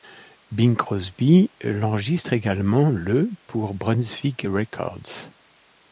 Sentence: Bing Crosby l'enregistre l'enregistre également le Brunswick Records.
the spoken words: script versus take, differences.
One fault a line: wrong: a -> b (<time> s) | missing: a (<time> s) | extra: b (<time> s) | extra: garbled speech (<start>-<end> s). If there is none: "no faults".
missing: l'enregistre (2.3 s)
extra: pour (3.5 s)